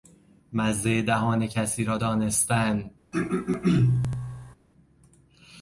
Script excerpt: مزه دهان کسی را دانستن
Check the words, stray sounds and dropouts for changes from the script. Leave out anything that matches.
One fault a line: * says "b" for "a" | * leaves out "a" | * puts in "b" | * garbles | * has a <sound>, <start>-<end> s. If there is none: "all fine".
* has a throat clearing, 3.1-4.6 s